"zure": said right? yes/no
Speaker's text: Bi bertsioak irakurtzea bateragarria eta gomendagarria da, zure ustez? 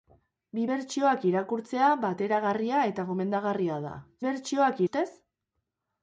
no